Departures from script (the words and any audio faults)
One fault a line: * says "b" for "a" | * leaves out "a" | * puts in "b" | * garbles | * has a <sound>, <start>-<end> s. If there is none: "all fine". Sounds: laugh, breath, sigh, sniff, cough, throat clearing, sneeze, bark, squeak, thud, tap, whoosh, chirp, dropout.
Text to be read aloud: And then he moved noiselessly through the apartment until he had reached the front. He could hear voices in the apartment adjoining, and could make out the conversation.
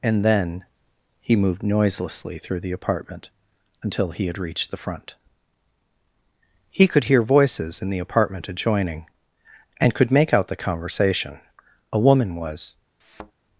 * puts in "A woman was"
* has a thud, 13.0-13.3 s